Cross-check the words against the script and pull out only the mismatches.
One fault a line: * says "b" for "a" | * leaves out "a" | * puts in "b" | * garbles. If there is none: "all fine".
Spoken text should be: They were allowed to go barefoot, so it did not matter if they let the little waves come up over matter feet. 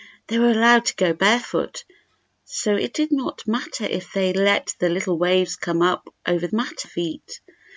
all fine